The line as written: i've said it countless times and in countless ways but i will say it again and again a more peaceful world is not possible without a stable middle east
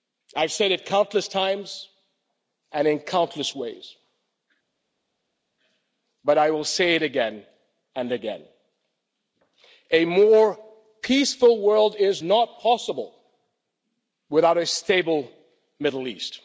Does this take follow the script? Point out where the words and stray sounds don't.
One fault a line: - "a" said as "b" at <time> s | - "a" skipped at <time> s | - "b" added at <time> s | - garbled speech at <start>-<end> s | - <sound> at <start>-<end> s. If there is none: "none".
none